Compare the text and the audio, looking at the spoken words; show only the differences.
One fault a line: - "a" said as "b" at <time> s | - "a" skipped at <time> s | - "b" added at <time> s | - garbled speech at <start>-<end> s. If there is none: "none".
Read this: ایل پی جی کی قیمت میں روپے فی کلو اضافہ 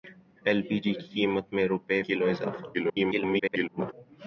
- "فی" skipped at 2.0 s
- garbled speech at 2.7-3.9 s